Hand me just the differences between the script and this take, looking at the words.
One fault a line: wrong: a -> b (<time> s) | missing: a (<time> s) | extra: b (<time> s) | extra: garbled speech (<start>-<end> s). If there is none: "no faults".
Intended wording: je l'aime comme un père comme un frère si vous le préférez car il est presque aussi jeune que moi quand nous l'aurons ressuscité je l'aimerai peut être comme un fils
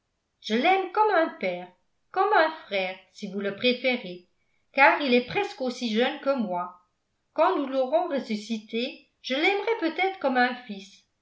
no faults